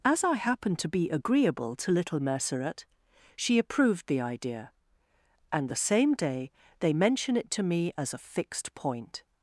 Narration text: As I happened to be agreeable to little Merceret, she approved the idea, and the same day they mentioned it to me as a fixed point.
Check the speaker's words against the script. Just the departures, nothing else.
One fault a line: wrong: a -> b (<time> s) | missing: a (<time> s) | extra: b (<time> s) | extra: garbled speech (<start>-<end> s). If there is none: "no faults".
wrong: mentioned -> mention (6.9 s)